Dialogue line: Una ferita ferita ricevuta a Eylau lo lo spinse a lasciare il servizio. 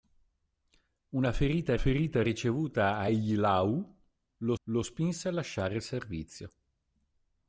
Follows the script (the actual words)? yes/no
yes